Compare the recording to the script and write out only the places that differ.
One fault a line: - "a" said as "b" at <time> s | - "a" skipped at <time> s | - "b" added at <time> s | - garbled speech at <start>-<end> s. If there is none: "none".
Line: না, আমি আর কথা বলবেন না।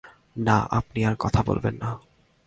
- "আমি" said as "আপনি" at 0.7 s